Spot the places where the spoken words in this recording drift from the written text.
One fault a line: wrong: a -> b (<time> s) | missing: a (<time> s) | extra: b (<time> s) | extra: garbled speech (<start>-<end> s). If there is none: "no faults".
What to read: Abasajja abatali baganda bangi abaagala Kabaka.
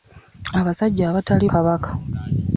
missing: baganda bangi abaagala (1.4 s)